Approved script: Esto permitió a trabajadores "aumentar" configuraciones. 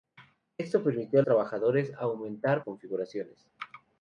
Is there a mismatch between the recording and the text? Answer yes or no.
no